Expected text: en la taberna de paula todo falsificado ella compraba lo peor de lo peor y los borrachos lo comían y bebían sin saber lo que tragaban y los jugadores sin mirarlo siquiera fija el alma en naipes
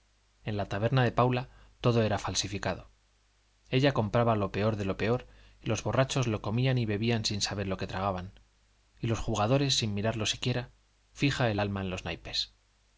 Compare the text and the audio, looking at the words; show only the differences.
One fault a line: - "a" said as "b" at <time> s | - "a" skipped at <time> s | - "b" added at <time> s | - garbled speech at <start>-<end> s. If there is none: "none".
- "era" added at 2.0 s
- "los" added at 11.9 s